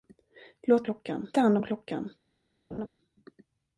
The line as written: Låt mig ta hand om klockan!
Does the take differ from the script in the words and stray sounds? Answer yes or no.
yes